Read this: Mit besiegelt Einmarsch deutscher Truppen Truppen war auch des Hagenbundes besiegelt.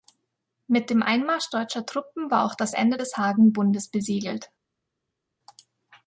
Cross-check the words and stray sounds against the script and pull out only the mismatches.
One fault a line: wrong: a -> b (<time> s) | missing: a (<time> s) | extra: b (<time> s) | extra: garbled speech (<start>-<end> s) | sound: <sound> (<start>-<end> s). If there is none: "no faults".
wrong: besiegelt -> dem (0.9 s)
missing: Truppen (2.3 s)
extra: das Ende (2.5 s)